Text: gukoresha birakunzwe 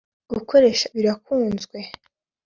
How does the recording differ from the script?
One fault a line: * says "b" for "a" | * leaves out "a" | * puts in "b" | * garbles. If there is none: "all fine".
all fine